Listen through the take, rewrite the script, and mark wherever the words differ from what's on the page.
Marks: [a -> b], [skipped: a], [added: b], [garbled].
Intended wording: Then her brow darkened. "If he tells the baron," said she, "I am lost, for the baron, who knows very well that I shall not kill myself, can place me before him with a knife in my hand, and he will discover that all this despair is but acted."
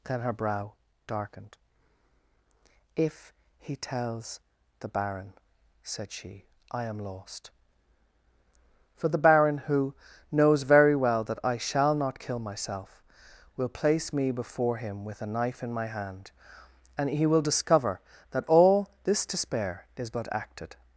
Then her brow darkened. "If he tells the baron," said she, "I am lost, for the baron, who knows very well that I shall not kill myself, [can -> will] place me before him with a knife in my hand, and he will discover that all this despair is but acted."